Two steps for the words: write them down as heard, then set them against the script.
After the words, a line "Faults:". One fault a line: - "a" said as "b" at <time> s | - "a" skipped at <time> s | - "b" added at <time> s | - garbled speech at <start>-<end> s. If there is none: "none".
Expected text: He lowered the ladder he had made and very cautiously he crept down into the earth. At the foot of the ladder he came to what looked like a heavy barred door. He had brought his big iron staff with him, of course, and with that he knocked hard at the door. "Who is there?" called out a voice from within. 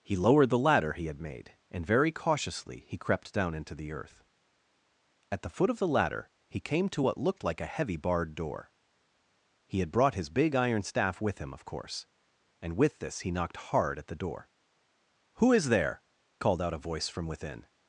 He lowered the ladder he had made and very cautiously he crept down into the earth. At the foot of the ladder he came to what looked like a heavy barred door. He had brought his big iron staff with him, of course, and with this he knocked hard at the door. "Who is there?" called out a voice from within.
Faults:
- "that" said as "this" at 13.0 s